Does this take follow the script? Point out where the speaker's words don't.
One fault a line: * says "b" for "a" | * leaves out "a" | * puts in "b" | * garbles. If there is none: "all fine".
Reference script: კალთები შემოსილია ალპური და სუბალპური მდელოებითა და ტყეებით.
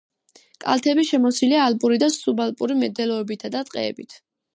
all fine